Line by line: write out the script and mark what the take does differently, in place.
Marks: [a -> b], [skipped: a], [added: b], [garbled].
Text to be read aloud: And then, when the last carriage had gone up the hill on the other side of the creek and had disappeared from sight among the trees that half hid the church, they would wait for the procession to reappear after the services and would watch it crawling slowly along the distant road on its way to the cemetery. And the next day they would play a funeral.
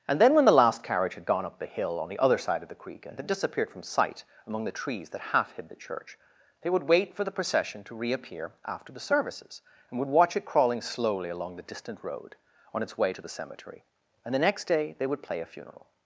And then, when the last carriage had gone up the hill on the other side of the creek and had disappeared from sight among the trees that half hid the church, they would wait for the procession to reappear after the services and would watch it crawling slowly along the distant road on its way to the cemetery. And the next day they would play a funeral.